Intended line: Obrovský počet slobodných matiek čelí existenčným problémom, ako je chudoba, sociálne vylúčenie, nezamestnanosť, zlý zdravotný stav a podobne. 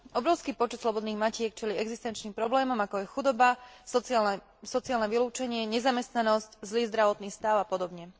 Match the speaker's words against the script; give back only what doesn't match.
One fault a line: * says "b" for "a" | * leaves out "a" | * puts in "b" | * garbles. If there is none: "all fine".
all fine